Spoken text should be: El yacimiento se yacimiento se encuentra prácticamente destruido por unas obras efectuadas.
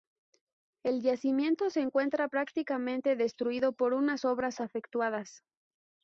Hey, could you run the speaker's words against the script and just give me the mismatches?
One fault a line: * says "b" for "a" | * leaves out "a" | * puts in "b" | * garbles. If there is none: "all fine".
* leaves out "yacimiento se"